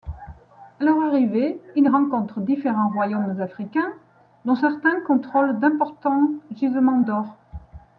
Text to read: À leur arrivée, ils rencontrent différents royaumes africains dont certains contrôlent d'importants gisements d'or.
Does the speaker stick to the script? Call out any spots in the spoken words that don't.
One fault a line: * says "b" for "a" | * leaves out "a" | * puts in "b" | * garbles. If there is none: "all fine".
all fine